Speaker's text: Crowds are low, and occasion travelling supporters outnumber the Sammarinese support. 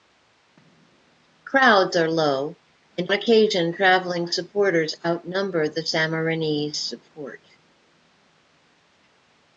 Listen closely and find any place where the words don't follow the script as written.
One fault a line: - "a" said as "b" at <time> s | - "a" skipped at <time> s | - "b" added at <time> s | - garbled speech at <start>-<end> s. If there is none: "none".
none